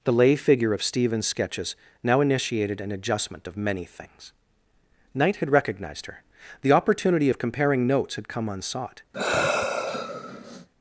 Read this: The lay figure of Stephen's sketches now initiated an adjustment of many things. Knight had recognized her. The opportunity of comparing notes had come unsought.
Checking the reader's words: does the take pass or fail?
pass